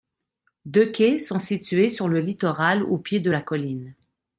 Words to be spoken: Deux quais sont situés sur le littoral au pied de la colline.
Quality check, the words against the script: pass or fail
pass